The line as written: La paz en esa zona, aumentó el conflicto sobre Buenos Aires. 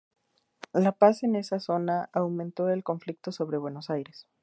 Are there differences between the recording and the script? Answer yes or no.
no